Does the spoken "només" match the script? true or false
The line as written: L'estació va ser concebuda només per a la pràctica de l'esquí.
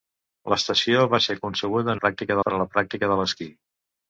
false